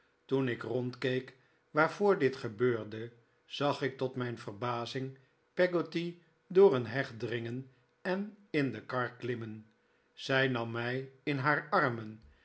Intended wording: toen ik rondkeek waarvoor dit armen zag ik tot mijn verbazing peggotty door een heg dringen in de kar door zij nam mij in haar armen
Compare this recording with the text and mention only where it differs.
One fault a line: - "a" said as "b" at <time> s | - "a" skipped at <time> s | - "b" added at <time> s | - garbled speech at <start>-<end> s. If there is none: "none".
- "armen" said as "gebeurde" at 2.4 s
- "en" added at 8.0 s
- "door" said as "klimmen" at 9.1 s